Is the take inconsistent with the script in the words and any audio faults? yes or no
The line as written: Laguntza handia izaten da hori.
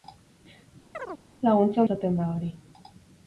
yes